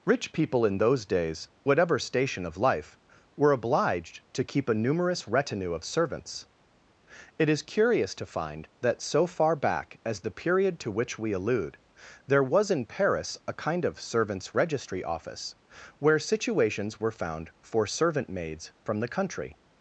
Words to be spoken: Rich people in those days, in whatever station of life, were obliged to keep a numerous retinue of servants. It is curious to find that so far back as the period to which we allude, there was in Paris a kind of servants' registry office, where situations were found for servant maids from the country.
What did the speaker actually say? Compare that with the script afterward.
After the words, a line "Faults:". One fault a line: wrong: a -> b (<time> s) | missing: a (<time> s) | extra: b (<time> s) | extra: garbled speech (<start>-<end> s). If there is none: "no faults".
Rich people in those days, whatever station of life, were obliged to keep a numerous retinue of servants. It is curious to find that so far back as the period to which we allude, there was in Paris a kind of servants' registry office, where situations were found for servant maids from the country.
Faults:
missing: in (1.5 s)